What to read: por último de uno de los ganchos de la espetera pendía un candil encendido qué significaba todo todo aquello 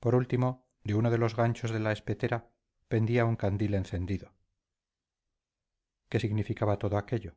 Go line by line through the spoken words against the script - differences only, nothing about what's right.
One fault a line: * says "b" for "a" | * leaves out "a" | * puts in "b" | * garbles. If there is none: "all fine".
* leaves out "todo"